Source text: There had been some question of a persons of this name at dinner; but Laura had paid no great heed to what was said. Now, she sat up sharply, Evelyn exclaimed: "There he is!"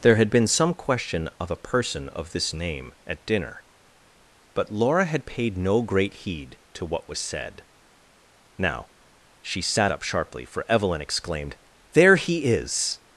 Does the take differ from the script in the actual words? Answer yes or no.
yes